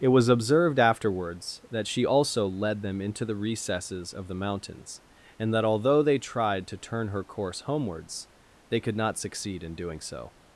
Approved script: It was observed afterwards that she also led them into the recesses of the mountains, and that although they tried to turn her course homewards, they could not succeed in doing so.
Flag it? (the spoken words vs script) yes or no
no